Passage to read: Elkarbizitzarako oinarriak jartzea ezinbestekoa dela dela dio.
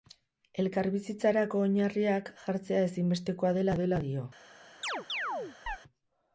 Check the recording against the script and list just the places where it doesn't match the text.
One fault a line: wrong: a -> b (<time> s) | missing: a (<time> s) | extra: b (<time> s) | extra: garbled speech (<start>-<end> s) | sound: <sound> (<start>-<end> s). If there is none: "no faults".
sound: chirp (4.8-5.8 s)